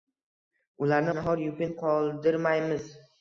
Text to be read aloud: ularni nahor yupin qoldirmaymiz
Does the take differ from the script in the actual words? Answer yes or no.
no